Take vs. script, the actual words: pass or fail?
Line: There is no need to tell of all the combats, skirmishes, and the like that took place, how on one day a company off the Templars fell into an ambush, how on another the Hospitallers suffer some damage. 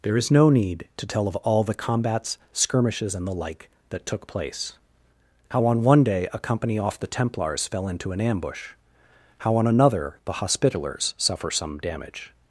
pass